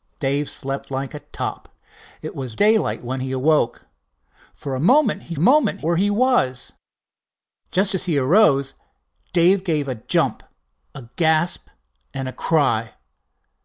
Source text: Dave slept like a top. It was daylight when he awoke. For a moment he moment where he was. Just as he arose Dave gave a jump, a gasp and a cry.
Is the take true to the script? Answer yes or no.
yes